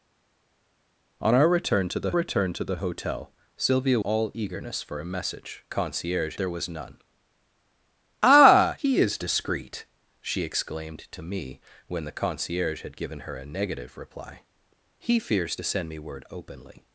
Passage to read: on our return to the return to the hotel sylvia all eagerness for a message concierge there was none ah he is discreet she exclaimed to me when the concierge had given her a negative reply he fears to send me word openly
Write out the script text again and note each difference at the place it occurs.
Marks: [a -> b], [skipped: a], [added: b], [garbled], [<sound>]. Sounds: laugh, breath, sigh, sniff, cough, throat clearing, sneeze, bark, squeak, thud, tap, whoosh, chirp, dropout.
on our return to the return to the hotel sylvia all eagerness for a message concierge there was none ah he is discreet she exclaimed to me when the concierge had given her a negative reply he fears to send me word openly